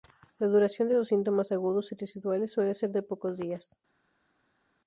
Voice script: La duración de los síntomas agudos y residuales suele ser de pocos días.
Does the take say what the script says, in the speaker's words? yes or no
yes